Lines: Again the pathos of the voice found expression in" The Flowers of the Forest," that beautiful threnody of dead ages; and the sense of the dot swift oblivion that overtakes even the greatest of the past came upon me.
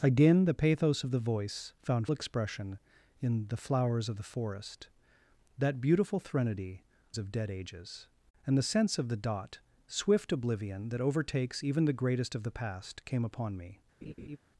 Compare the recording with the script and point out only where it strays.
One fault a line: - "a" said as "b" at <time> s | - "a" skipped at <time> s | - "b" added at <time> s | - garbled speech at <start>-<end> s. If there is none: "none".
none